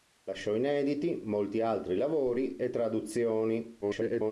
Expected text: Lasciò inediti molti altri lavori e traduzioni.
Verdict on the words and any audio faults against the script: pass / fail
fail